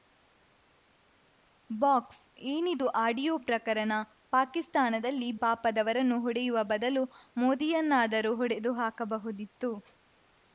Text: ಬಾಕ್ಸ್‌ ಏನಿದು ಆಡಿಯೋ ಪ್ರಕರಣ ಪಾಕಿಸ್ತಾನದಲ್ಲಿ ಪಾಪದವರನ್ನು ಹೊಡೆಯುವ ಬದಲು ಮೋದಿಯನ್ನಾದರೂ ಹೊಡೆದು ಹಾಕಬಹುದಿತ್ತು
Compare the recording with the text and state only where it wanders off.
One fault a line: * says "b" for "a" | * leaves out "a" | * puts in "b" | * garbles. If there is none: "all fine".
all fine